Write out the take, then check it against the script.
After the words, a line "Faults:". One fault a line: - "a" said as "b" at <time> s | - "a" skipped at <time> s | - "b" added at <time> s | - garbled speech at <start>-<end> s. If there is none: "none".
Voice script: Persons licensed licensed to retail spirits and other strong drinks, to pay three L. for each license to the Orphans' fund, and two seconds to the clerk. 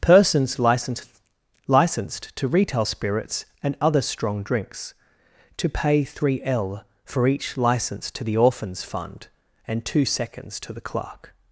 Persons licensed licensed to retail spirits and other strong drinks, to pay three L. for each license to the Orphans' fund, and two seconds to the clerk.
Faults:
none